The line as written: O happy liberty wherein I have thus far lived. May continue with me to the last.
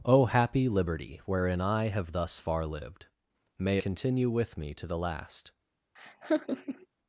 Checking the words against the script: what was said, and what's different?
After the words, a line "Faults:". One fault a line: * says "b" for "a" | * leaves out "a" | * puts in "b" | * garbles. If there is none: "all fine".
O happy liberty wherein I have thus far lived. May continue with me to the last.
Faults:
all fine